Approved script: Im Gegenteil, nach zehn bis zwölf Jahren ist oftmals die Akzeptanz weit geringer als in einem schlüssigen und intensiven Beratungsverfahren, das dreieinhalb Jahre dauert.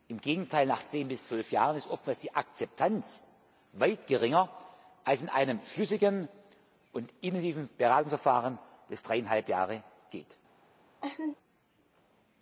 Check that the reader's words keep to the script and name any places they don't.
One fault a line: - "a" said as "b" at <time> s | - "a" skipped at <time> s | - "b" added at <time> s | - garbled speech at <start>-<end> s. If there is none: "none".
none